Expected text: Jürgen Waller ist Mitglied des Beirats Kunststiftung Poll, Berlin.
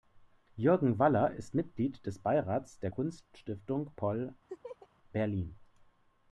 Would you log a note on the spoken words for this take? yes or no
yes